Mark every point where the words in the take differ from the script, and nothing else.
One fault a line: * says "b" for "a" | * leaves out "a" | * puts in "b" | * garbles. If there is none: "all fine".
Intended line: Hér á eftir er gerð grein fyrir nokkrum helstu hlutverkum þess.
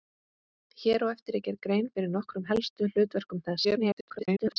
* garbles